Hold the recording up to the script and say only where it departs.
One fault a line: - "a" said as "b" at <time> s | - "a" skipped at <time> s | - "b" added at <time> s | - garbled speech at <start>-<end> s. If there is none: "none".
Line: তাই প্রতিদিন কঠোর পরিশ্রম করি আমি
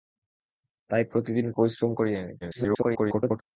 - "কঠোর" skipped at 1.5 s
- garbled speech at 2.4-3.4 s